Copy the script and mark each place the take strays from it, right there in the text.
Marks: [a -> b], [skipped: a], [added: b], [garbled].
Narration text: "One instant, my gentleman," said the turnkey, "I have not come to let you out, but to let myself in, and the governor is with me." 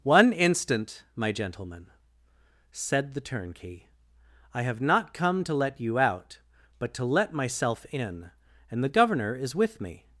"One instant, my gentleman," said the turnkey, "I have not come to let you out, but to let myself in, and the governor is with me."